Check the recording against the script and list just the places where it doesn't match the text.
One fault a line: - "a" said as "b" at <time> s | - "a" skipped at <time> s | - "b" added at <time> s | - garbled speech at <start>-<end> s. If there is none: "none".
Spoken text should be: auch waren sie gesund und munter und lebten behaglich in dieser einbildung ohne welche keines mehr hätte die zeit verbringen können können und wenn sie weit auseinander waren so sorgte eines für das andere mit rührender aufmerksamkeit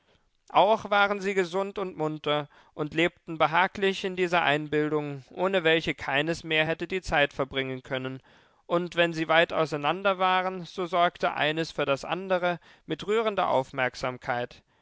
- "können" skipped at 8.2 s